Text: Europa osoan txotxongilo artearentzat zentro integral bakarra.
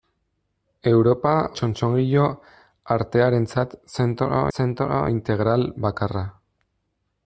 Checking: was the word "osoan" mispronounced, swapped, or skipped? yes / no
yes